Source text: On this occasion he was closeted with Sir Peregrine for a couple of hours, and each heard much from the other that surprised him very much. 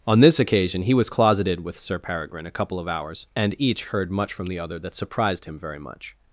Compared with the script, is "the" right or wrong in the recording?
right